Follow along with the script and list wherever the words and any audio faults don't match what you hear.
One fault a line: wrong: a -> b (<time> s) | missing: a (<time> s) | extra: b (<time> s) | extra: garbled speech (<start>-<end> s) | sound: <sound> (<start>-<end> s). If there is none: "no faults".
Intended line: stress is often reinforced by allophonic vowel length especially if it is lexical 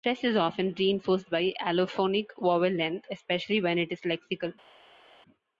wrong: if -> when (3.6 s)